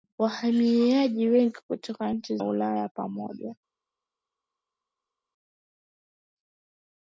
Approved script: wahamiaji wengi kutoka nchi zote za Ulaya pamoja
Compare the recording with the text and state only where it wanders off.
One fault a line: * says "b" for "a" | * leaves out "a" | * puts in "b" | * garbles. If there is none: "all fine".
* leaves out "zote za"